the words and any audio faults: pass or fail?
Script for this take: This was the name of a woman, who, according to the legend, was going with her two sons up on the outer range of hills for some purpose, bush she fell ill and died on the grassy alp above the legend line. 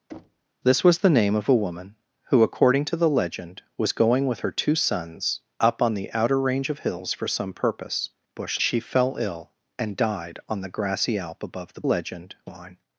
fail